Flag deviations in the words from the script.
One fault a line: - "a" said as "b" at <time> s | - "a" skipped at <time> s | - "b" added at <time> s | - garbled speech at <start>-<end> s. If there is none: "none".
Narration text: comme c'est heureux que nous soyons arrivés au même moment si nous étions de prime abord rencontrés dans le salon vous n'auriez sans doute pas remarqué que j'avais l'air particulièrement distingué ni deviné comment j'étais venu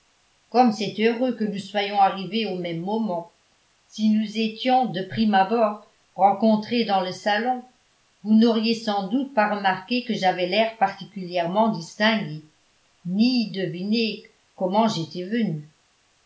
none